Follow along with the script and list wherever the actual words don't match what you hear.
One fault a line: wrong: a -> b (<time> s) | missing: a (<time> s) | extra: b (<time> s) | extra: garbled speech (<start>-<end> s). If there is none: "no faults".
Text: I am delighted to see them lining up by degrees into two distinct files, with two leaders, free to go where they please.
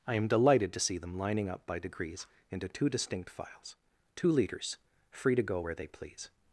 missing: with (3.8 s)